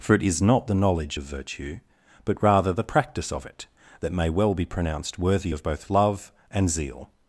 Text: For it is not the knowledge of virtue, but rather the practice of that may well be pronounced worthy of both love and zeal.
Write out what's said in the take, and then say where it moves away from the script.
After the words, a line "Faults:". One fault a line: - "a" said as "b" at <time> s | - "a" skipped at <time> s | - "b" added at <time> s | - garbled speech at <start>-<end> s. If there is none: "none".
For it is not the knowledge of virtue, but rather the practice of it, that may well be pronounced worthy of both love and zeal.
Faults:
- "it" added at 3.4 s